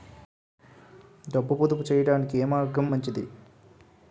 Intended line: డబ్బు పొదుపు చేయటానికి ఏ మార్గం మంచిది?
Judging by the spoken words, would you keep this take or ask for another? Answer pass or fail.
pass